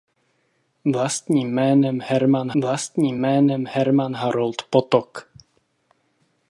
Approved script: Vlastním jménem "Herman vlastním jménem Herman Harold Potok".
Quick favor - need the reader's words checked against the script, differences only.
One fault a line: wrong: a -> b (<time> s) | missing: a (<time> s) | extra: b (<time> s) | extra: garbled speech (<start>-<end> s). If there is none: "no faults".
no faults